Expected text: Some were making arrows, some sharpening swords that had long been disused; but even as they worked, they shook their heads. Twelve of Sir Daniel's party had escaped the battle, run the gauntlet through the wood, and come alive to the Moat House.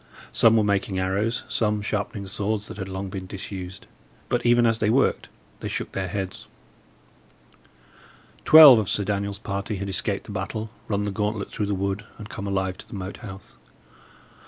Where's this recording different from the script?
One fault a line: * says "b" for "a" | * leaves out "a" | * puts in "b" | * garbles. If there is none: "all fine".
all fine